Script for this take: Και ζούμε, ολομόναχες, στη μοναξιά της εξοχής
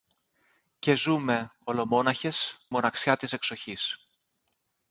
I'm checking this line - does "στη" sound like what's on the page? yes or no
no